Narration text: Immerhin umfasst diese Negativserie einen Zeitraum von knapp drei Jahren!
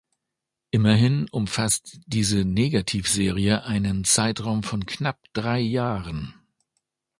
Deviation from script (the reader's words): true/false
false